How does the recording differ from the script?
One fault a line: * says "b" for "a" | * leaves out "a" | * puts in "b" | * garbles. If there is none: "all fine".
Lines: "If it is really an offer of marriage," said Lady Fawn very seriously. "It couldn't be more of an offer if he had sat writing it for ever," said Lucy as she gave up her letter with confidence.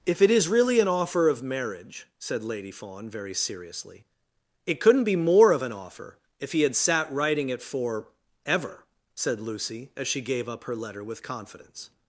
all fine